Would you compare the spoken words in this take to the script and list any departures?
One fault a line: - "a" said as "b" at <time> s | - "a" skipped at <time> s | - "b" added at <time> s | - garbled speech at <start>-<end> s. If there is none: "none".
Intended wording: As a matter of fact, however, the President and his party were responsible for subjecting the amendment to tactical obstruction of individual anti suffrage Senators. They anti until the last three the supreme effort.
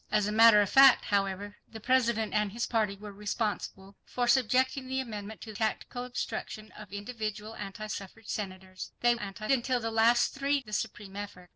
none